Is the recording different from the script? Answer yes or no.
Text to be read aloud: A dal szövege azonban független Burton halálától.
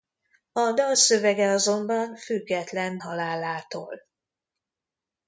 yes